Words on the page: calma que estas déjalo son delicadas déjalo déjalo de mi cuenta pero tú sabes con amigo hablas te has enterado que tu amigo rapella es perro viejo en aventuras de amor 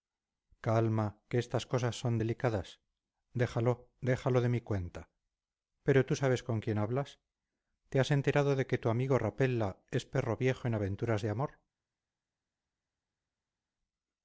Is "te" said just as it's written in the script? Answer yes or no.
yes